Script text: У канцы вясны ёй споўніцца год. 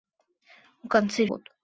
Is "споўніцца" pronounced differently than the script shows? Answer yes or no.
yes